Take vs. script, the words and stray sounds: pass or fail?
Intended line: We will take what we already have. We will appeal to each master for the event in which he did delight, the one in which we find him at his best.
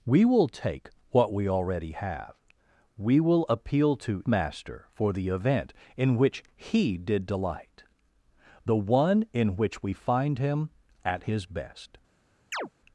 fail